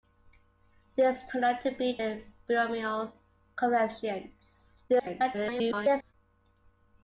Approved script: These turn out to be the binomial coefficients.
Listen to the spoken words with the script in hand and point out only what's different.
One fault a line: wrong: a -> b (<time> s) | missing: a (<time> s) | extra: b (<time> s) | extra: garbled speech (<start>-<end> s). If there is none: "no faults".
extra: garbled speech (4.9-6.1 s)